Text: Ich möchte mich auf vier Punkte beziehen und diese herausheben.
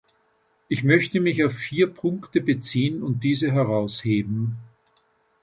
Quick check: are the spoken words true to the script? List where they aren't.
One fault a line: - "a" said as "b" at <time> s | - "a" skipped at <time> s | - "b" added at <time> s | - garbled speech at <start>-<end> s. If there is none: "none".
none